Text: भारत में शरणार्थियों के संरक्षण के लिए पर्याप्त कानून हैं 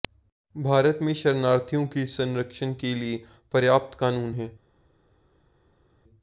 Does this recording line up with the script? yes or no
yes